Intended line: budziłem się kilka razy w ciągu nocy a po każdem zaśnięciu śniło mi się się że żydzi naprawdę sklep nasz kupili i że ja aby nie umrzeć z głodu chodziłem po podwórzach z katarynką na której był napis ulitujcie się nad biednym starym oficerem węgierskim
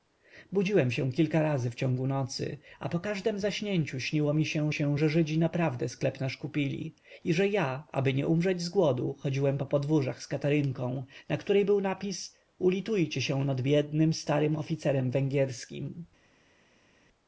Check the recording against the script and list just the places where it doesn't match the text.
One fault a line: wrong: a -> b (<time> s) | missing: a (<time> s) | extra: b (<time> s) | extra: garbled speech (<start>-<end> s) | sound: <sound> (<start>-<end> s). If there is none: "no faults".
no faults